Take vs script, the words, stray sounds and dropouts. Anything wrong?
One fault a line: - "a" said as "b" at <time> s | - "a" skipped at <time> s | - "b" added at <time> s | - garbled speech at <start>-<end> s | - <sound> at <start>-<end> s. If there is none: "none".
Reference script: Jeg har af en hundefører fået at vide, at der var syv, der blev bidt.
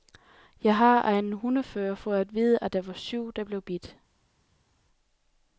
none